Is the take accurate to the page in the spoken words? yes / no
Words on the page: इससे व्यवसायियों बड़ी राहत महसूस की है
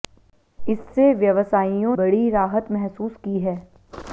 yes